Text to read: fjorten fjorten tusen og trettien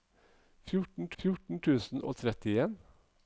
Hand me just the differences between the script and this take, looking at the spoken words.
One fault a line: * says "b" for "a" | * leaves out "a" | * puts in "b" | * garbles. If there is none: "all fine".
all fine